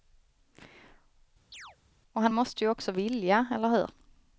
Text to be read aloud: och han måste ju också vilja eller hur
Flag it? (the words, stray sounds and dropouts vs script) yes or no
yes